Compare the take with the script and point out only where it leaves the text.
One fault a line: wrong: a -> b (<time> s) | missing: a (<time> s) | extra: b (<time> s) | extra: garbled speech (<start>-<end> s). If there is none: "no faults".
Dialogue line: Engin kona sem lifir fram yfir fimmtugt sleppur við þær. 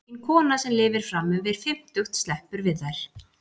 no faults